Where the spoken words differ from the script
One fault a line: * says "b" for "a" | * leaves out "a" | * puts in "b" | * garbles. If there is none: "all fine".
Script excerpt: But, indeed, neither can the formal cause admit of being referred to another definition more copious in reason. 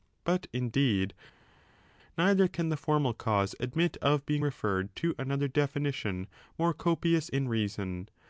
all fine